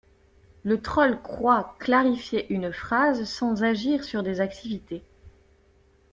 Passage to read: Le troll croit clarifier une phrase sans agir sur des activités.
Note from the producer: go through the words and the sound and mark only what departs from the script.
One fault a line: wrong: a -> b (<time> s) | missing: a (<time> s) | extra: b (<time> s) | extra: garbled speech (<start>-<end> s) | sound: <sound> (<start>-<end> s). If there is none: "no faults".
no faults